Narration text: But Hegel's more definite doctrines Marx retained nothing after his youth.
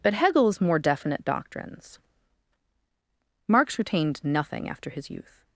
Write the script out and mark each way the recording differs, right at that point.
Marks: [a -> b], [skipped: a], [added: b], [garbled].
But Hegel's more definite doctrines Marx retained nothing after his youth.